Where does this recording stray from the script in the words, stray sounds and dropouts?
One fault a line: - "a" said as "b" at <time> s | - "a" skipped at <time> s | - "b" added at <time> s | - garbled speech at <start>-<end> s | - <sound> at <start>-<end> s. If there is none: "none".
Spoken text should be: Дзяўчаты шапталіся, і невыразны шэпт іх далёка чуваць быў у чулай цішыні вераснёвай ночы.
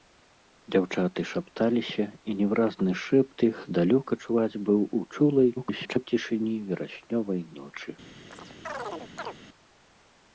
- garbled speech at 5.6-6.1 s
- chirp at 8.3-9.4 s